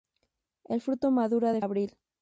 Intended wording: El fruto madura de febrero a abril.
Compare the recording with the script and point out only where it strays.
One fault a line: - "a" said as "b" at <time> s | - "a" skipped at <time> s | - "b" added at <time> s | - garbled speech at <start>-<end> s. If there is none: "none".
- "febrero a" skipped at 1.6 s